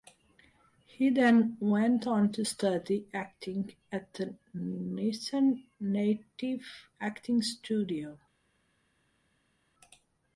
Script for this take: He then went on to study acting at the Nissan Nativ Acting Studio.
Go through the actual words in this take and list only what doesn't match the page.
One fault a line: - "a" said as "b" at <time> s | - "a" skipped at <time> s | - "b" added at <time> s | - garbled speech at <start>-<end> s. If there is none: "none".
none